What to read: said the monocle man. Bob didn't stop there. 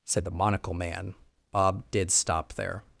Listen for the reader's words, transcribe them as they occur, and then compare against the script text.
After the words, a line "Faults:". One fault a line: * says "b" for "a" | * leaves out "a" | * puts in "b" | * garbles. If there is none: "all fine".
said the monocle man. Bob did stop there.
Faults:
* says "did" for "didn't"